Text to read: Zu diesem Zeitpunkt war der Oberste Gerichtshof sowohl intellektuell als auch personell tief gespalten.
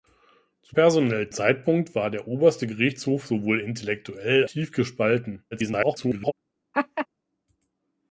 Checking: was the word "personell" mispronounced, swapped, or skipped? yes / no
yes